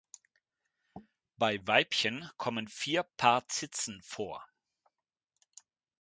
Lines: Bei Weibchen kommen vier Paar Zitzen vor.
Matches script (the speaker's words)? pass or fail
pass